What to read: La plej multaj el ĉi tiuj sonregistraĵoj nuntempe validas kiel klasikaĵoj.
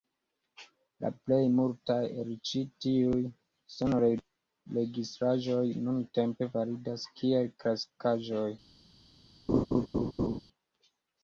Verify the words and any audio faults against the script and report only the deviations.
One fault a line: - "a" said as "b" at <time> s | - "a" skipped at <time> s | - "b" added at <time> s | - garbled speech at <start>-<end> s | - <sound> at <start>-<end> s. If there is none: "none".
- laugh at 9.5-10.4 s